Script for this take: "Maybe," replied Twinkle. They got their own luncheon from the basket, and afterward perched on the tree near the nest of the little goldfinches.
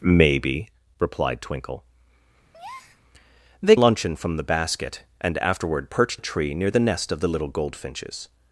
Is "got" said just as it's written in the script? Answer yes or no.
no